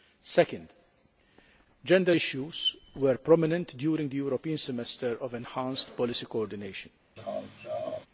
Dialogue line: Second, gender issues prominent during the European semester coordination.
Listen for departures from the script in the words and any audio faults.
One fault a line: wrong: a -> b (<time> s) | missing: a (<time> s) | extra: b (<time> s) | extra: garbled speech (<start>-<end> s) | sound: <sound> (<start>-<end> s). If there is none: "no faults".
extra: were (2.9 s)
extra: of enhanced policy (5.2 s)
sound: laugh (7.2-8.1 s)